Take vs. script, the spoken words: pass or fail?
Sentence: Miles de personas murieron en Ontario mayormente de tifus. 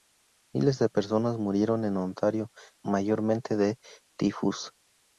pass